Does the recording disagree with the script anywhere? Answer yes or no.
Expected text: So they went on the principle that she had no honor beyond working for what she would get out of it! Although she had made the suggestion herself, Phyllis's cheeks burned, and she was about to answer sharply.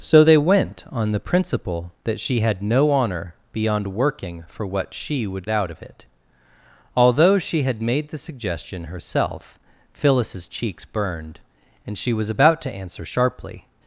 yes